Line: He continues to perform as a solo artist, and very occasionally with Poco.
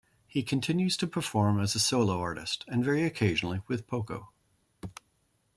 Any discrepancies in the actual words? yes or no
no